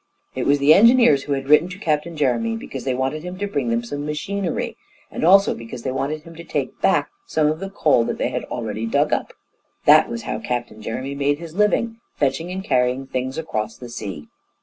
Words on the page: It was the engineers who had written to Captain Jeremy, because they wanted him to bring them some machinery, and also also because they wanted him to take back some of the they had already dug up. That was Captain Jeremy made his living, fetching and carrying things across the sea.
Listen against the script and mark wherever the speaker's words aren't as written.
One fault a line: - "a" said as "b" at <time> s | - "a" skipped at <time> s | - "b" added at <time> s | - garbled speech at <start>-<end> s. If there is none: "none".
- "also" skipped at 5.5 s
- "coal that" added at 7.7 s
- "how" added at 10.2 s